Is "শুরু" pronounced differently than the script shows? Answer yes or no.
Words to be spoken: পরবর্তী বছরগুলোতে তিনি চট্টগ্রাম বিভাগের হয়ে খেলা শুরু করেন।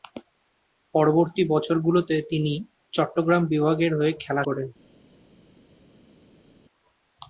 yes